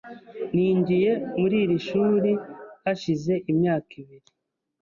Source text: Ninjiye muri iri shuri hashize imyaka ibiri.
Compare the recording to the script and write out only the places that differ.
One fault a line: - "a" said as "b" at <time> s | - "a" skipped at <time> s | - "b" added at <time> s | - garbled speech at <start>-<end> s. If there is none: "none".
none